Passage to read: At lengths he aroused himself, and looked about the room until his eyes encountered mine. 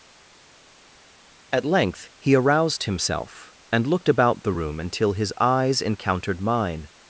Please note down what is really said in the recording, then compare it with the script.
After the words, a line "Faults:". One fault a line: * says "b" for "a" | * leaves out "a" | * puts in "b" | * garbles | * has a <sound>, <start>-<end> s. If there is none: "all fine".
At length he aroused himself, and looked about the room until his eyes encountered mine.
Faults:
* says "length" for "lengths"